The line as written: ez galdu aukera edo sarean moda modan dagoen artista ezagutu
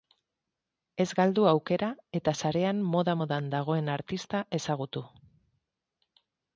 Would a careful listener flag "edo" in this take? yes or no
yes